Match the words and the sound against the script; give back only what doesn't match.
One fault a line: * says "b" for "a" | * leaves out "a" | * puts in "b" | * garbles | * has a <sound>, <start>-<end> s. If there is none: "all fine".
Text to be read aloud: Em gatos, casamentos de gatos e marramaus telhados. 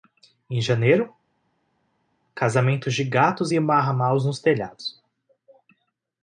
* says "janeiro" for "gatos"
* puts in "nos"